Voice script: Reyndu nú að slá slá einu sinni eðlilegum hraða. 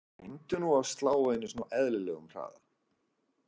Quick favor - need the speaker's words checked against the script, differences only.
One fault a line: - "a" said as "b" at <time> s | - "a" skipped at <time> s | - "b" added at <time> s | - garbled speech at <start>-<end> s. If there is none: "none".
- "slá" skipped at 1.1 s
- "á" added at 1.7 s